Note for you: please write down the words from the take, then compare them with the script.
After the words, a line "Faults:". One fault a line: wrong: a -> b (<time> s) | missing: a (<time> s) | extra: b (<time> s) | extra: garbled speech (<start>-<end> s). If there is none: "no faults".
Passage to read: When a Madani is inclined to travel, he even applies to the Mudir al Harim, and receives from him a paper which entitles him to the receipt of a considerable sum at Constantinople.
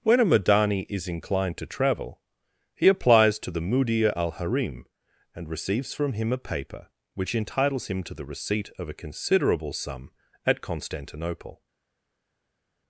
When a Madani is inclined to travel, he applies to the Mudir al Harim, and receives from him a paper which entitles him to the receipt of a considerable sum at Constantinople.
Faults:
missing: even (2.9 s)